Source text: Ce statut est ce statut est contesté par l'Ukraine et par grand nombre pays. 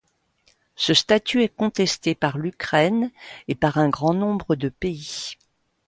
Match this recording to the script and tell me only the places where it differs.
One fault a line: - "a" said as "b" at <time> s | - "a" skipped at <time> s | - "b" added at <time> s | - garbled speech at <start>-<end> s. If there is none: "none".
- "ce statut est" skipped at 1.6 s
- "un" added at 3.8 s
- "de" added at 4.6 s